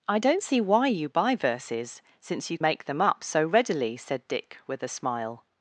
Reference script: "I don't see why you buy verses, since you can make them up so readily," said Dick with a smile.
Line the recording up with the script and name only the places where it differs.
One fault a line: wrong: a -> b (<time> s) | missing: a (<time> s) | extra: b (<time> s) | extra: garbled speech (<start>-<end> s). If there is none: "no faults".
missing: can (2.6 s)